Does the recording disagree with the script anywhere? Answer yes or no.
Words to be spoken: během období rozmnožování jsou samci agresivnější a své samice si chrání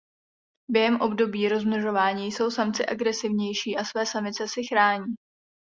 no